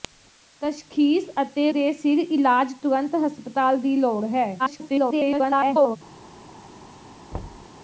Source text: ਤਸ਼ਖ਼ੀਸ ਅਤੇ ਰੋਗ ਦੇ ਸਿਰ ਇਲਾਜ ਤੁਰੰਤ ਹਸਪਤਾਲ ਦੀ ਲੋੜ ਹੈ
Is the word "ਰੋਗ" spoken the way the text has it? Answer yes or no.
no